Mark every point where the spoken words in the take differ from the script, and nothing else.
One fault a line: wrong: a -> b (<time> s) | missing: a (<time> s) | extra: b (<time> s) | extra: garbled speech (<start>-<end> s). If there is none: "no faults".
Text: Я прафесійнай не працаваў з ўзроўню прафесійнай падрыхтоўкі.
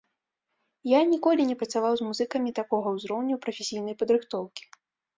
wrong: прафесійнай -> ніколі (1.1 s)
extra: музыкамі такога (2.1 s)